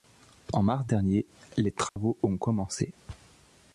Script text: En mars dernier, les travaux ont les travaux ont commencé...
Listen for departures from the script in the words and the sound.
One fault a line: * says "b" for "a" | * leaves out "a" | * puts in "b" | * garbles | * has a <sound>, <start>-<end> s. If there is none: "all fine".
* has a dropout, 1.9-2.0 s
* leaves out "les travaux ont"